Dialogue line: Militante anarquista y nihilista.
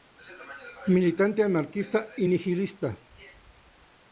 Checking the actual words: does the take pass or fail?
pass